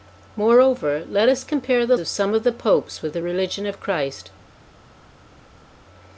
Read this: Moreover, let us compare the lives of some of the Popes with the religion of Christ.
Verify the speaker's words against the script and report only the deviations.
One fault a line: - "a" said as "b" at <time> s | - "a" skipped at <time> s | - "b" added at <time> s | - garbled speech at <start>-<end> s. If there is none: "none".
- "lives" skipped at 1.9 s